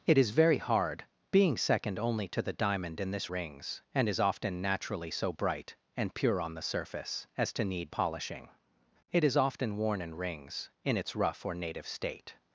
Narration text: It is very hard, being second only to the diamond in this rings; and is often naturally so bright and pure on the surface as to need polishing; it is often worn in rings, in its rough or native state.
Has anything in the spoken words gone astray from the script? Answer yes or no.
no